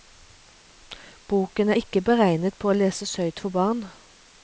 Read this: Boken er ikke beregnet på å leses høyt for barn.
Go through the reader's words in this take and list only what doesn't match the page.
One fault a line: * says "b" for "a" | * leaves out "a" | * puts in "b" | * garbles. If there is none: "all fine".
all fine